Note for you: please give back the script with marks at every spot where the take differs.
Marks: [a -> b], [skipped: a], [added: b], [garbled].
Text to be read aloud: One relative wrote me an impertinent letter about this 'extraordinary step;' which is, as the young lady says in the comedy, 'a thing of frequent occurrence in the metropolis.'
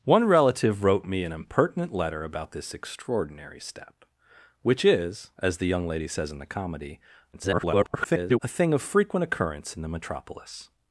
One relative wrote me an impertinent letter about this 'extraordinary step;' which is, as the young lady says in the comedy, [garbled] 'a thing of frequent occurrence in the metropolis.'